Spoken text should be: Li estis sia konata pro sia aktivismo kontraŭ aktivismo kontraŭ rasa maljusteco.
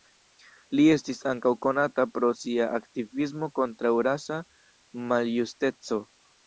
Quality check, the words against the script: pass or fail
fail